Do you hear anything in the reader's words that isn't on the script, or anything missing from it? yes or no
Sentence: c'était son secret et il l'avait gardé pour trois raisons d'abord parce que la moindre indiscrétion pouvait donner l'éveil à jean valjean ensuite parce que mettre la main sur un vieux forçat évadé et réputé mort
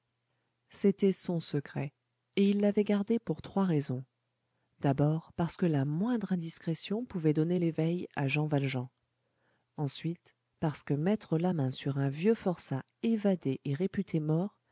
no